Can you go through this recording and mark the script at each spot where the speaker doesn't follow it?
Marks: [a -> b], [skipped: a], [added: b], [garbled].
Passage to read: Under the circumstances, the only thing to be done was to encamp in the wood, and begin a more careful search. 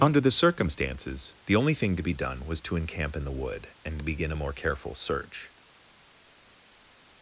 Under the circumstances, the only thing to be done was to encamp in the wood, and begin a more careful search.